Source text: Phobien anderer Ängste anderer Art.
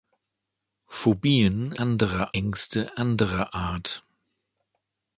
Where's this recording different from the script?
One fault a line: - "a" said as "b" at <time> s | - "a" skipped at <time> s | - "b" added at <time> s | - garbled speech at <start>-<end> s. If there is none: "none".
none